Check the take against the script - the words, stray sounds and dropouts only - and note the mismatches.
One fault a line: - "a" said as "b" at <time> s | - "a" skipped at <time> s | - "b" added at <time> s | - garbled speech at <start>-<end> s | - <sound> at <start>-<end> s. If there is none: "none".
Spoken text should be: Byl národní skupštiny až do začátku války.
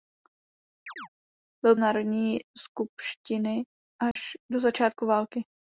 - chirp at 0.9-1.1 s
- dropout at 4.1-4.2 s